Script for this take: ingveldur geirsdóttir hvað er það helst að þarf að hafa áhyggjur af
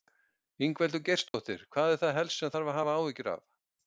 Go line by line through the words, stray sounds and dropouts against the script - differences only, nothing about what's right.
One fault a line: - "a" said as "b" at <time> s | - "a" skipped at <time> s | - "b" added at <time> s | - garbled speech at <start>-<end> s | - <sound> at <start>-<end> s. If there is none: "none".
- dropout at 1.3-1.3 s
- "að" said as "sem" at 2.4 s